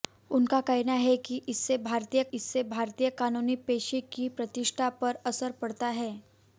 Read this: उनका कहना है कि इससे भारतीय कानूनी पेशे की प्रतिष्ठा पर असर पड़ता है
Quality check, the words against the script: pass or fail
fail